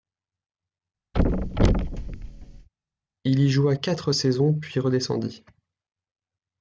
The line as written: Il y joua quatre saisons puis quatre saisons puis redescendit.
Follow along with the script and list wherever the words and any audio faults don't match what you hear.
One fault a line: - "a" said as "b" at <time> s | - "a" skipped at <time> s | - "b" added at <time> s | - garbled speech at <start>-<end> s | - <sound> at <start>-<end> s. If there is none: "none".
- thud at 1.1-2.7 s
- "quatre saisons puis" skipped at 4.8 s